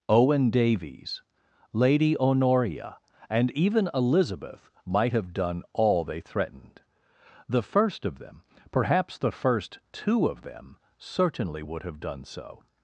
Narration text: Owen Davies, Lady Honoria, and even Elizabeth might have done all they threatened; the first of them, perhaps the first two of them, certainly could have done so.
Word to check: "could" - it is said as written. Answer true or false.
false